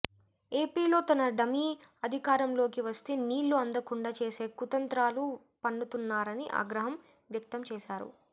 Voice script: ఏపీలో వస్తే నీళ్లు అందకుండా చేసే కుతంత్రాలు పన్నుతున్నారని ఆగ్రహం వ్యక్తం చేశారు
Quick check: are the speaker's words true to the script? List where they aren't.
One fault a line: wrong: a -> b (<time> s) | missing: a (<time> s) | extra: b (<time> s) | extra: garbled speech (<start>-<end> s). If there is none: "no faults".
extra: తన డమీ అధికారంలోకి (1.0 s)